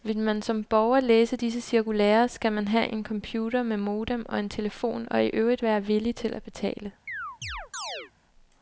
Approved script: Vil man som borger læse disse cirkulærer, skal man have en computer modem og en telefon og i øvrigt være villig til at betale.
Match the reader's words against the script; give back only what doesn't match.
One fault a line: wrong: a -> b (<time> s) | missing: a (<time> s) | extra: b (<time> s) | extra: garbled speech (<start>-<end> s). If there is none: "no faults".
extra: med (3.6 s)